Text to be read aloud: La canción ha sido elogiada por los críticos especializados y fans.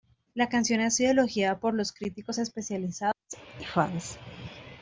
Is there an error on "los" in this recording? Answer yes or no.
no